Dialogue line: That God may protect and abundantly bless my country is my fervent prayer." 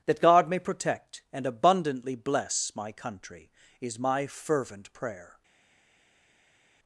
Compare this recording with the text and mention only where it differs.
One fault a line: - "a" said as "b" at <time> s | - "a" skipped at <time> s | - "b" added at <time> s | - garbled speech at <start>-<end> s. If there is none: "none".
none